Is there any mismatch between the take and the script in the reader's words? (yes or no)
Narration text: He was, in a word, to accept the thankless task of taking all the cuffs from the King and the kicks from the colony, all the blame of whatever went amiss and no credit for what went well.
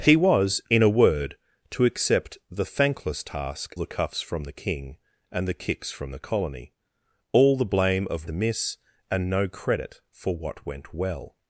yes